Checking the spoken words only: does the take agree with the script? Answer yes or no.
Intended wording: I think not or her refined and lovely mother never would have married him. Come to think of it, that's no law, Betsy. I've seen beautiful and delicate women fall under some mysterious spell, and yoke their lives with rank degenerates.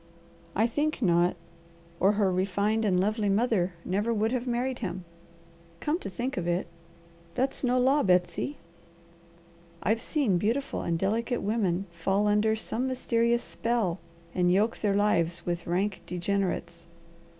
yes